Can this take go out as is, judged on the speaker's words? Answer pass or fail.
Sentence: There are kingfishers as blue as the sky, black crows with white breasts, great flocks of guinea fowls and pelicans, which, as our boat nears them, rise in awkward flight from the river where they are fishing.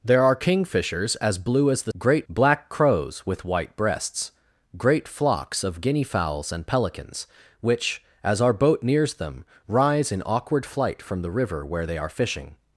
fail